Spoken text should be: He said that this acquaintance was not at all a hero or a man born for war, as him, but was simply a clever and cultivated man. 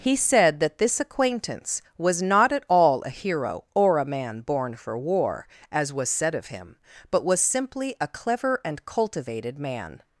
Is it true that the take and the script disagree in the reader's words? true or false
true